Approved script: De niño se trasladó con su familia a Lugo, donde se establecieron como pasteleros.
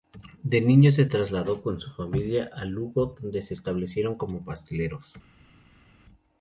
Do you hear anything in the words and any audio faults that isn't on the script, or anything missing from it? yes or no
no